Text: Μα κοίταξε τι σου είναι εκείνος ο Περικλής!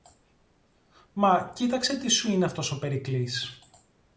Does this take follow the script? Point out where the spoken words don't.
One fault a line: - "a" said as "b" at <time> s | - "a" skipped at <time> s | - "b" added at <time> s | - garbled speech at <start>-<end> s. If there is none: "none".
- "εκείνος" said as "αυτός" at 2.4 s